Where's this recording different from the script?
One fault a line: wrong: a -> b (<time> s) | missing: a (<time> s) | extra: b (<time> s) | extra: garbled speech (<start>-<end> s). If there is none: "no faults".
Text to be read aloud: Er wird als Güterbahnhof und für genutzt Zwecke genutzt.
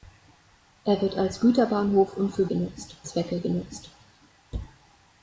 no faults